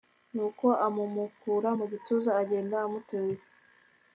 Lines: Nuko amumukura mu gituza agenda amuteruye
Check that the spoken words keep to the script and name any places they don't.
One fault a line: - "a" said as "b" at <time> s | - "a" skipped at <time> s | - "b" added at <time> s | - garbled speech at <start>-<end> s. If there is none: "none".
none